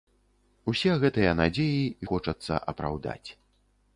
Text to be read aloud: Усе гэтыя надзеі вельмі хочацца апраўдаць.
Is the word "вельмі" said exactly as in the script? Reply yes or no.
no